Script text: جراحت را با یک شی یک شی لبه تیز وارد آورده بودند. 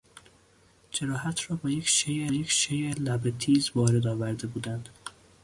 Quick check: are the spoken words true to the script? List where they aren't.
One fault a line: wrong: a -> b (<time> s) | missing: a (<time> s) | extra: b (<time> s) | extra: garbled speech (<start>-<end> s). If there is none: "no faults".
no faults